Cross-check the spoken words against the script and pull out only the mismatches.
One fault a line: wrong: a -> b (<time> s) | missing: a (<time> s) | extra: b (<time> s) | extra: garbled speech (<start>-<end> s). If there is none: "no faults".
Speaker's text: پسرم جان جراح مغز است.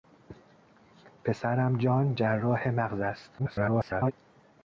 extra: garbled speech (3.4-4.1 s)